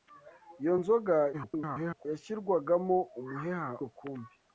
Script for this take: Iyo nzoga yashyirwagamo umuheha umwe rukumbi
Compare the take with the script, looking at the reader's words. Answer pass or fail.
fail